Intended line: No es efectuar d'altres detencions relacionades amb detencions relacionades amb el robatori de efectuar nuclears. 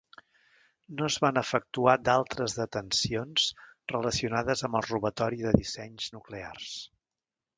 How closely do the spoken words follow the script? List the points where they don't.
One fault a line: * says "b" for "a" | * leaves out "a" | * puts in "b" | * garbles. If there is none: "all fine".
* puts in "van"
* leaves out "detencions relacionades amb"
* says "dissenys" for "efectuar"